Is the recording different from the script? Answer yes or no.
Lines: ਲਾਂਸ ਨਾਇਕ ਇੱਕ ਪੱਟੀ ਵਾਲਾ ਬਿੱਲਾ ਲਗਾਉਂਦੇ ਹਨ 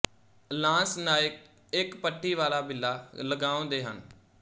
no